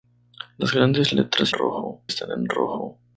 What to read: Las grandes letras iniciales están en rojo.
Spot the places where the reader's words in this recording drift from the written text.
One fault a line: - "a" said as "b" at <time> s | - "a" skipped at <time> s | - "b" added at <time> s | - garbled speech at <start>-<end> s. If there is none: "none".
- "iniciales" said as "rojo" at 1.5 s